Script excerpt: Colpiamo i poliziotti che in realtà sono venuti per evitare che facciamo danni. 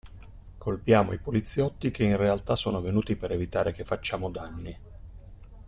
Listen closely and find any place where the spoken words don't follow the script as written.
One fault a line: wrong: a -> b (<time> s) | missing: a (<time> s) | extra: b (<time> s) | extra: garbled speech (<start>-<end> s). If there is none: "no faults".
no faults